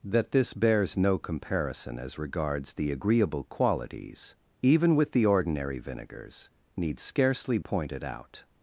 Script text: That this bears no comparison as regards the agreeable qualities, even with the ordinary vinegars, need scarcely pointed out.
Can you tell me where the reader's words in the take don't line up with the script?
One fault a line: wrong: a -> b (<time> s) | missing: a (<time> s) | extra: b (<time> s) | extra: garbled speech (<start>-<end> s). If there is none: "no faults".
no faults